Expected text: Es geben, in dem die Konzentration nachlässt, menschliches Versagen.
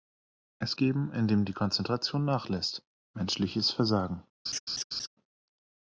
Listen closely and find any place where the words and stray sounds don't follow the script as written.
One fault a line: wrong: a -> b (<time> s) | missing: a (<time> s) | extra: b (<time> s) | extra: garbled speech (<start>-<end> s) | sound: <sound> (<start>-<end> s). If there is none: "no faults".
sound: laugh (4.5-5.1 s)